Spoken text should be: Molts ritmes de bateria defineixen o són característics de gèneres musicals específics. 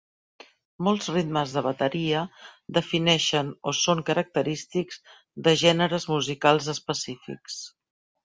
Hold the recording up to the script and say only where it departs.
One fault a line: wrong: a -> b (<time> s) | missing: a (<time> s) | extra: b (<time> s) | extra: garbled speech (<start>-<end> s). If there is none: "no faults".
no faults